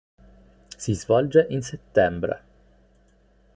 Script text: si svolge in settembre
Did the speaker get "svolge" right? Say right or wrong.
right